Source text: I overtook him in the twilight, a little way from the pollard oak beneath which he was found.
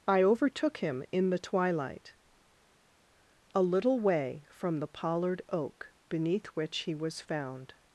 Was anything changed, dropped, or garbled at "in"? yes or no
no